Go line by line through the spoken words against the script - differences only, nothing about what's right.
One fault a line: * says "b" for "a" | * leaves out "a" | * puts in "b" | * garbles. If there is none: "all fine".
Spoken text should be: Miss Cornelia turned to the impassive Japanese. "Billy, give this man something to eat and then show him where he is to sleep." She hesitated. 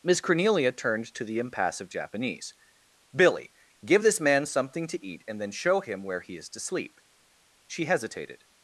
all fine